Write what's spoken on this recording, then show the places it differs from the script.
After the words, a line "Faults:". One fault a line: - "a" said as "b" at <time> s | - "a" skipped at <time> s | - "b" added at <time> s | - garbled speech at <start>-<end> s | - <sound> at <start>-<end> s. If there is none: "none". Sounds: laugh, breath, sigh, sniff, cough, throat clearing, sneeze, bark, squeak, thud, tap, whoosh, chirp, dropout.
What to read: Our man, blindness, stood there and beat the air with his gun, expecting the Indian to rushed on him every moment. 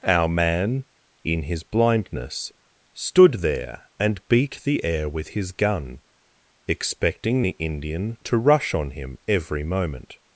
Our man, in his blindness, stood there and beat the air with his gun, expecting the Indian to rush on him every moment.
Faults:
- "in his" added at 1.2 s
- "rushed" said as "rush" at 8.4 s